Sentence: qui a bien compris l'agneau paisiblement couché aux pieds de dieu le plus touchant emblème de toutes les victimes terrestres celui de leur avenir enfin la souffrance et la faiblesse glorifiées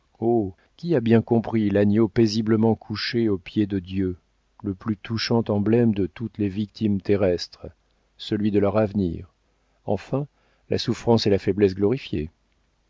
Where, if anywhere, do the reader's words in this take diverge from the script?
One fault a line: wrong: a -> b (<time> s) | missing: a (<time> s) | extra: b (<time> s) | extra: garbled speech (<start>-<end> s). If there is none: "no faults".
no faults